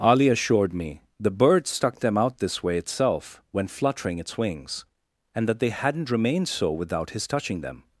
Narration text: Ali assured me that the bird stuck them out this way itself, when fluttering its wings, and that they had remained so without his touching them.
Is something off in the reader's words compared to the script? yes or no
yes